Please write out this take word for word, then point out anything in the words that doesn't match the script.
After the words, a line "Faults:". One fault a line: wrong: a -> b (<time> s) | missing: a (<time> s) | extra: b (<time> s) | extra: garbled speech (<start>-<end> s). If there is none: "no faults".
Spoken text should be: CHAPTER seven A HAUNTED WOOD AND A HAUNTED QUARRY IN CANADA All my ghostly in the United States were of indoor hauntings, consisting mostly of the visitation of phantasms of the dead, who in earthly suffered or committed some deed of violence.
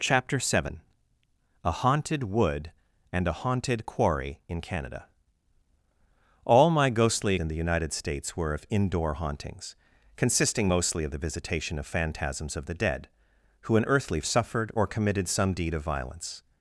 CHAPTER seven A HAUNTED WOOD AND A HAUNTED QUARRY IN CANADA All my ghostly in the United States were of indoor hauntings, consisting mostly of the visitation of phantasms of the dead, who in earthly suffered or committed some deed of violence.
Faults:
no faults